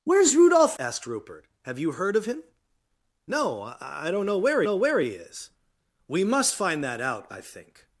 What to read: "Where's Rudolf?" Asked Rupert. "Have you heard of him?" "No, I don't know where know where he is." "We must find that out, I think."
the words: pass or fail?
pass